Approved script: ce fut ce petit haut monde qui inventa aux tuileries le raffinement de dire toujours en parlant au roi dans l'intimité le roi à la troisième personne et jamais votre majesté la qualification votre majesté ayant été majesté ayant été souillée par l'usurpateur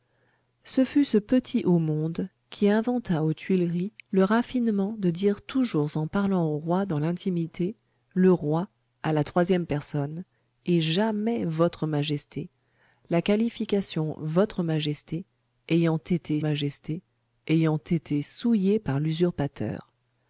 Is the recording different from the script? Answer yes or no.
no